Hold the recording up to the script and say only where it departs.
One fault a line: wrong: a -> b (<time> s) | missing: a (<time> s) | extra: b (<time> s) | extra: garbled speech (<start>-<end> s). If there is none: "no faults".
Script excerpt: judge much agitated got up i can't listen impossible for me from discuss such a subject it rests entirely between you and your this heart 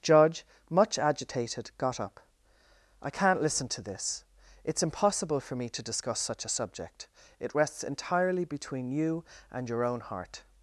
extra: to this it's (3.7 s)
wrong: from -> to (5.7 s)
wrong: this -> own (9.8 s)